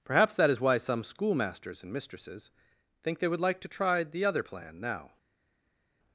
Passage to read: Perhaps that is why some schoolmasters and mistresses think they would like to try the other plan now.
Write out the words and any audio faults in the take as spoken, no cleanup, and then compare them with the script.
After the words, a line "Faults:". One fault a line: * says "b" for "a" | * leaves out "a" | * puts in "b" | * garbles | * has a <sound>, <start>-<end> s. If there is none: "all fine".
Perhaps that is why some schoolmasters and mistresses think they would like to try the other plan now.
Faults:
all fine